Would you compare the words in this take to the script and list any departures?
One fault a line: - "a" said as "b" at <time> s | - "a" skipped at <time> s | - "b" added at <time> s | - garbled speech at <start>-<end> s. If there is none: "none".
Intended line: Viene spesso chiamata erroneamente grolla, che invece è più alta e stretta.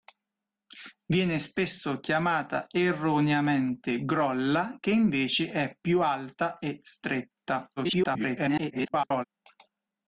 - garbled speech at 7.8-9.2 s